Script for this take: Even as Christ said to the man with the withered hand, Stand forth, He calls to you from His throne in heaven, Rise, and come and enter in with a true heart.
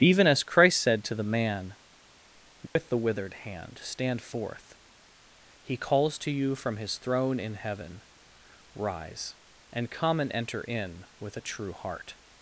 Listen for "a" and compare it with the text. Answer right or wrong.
right